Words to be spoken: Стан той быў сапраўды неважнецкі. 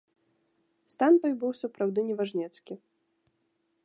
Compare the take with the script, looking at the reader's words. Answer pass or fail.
pass